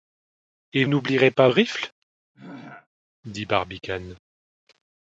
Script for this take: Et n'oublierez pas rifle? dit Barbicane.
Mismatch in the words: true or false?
false